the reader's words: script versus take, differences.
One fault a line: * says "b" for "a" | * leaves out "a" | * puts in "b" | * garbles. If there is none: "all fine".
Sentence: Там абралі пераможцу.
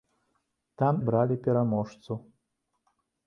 all fine